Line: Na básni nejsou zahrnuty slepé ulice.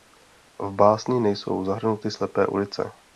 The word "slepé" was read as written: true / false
true